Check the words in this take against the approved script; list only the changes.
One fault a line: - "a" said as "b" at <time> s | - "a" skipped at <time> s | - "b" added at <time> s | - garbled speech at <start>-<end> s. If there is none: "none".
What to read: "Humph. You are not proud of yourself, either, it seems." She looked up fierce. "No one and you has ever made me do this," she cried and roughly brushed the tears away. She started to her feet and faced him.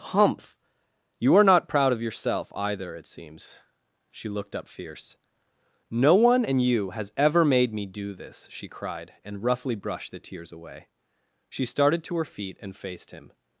none